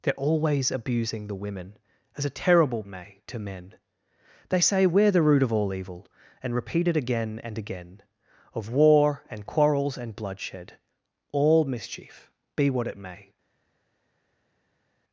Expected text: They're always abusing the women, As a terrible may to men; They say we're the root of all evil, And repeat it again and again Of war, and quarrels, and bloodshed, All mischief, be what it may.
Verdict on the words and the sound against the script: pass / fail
pass